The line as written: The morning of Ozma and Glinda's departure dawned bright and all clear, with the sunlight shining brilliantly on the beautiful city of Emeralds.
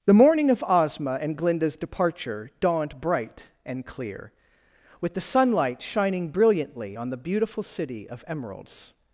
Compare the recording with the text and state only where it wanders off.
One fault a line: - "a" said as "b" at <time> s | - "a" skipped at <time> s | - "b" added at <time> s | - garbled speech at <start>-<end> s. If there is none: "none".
- "all" skipped at 3.9 s